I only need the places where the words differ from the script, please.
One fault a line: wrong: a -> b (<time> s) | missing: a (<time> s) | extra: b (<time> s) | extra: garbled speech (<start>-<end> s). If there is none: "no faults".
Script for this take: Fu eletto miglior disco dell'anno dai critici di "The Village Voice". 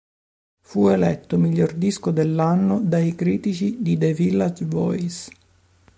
no faults